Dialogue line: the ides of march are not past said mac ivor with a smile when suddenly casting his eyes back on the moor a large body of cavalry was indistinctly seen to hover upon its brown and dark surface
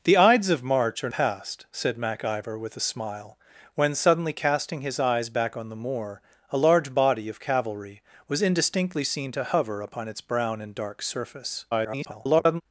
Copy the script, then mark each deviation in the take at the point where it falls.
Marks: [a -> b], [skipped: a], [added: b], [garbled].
the ides of march are [skipped: not] past said mac ivor with a smile when suddenly casting his eyes back on the moor a large body of cavalry was indistinctly seen to hover upon its brown and dark surface [garbled]